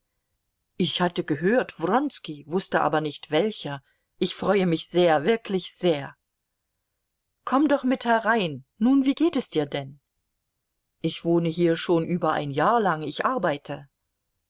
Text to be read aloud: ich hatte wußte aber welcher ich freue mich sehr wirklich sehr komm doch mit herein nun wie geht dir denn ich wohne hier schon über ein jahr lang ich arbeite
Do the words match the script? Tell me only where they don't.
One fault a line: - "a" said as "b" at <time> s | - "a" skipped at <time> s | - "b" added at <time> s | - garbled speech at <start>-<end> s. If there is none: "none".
- "gehört wronski" added at 1.2 s
- "nicht" added at 3.0 s
- "es" added at 9.3 s